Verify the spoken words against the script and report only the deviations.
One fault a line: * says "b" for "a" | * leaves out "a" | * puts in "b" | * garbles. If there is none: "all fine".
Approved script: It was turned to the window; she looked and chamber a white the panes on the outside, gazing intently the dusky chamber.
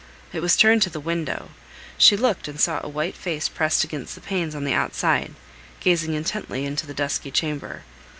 * says "saw" for "chamber"
* puts in "face pressed against"
* puts in "into"